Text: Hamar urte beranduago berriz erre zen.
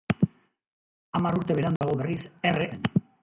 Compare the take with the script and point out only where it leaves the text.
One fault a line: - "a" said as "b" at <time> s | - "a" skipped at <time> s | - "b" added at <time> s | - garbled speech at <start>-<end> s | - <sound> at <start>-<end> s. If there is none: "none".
- dropout at 1.8-1.8 s